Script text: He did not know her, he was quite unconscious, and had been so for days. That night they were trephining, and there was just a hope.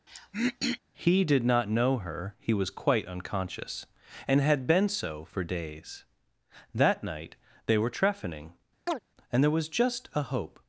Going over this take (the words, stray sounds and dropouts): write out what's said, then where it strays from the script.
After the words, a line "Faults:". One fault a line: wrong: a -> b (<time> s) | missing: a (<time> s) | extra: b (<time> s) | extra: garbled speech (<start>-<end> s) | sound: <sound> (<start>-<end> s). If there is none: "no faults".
He did not know her, he was quite unconscious, and had been so for days. That night they were trephining, and there was just a hope.
Faults:
sound: throat clearing (0.1-0.8 s)
sound: chirp (8.9-9.0 s)